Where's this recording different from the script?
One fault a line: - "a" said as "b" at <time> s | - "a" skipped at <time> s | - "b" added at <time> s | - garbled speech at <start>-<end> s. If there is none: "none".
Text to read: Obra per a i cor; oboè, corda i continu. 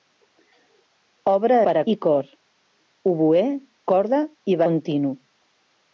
none